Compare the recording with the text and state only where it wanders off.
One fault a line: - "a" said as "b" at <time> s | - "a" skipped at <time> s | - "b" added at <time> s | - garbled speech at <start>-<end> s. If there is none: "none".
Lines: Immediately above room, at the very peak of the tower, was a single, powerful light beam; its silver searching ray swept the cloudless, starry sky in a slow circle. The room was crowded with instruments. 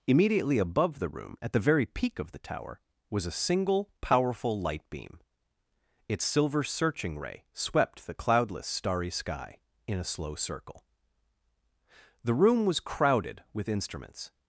- "the" added at 1.0 s